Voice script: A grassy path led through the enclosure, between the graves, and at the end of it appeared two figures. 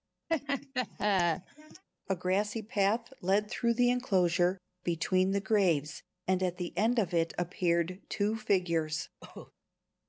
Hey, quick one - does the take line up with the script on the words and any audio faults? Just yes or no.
no